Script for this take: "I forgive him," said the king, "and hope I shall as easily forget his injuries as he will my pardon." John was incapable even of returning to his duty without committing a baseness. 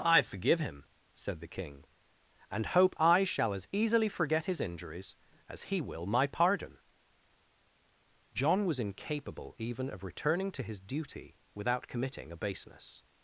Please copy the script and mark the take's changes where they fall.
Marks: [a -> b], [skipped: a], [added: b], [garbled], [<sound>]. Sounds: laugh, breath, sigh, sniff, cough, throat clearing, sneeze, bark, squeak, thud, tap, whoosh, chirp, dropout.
"I forgive him," said the king, "and hope I shall as easily forget his injuries as he will my pardon." John was incapable even of returning to his duty without committing a baseness.